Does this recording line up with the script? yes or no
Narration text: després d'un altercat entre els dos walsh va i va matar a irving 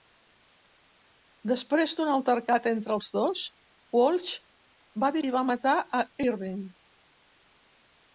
yes